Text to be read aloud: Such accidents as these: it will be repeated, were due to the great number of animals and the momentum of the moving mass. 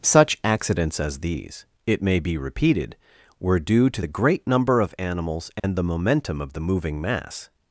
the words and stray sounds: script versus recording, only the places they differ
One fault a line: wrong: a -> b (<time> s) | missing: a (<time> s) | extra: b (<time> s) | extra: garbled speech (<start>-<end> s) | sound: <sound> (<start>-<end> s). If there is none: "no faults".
wrong: will -> may (2.0 s)
sound: dropout (5.6-5.6 s)